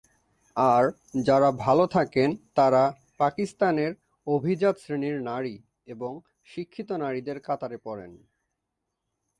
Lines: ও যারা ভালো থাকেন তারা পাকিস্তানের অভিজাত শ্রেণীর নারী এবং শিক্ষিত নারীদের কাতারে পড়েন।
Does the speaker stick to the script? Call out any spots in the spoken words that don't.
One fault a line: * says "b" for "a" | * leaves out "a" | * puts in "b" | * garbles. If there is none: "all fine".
* says "আর" for "ও"